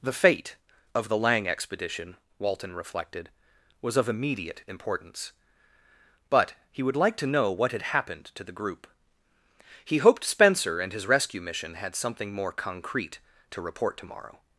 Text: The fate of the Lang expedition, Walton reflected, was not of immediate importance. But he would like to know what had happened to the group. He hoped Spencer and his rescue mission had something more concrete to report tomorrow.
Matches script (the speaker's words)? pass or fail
fail